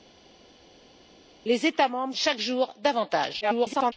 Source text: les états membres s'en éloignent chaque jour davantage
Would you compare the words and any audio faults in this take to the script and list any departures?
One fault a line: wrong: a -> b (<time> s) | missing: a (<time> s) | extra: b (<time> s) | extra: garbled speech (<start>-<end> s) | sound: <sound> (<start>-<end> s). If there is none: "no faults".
missing: s'en éloignent (2.1 s)
extra: garbled speech (3.4-3.9 s)